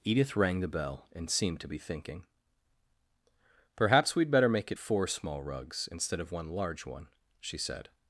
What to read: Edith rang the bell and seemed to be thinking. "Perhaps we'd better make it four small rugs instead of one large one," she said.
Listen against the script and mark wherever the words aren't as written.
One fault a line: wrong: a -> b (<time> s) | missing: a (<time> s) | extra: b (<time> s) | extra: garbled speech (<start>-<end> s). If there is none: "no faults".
no faults